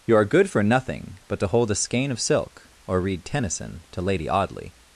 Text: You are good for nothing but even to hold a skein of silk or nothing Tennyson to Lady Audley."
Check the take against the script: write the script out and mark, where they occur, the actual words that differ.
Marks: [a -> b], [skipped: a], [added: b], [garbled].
You are good for nothing but [skipped: even] to hold a skein of silk or [nothing -> read] Tennyson to Lady Audley."